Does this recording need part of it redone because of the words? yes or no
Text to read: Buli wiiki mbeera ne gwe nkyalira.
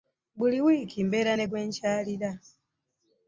no